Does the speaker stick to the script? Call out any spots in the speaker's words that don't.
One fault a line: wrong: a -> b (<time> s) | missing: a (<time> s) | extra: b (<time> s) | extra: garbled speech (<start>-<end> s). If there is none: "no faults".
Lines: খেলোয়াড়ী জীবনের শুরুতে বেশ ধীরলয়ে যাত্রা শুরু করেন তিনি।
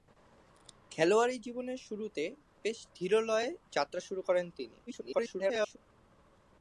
extra: garbled speech (4.9-5.8 s)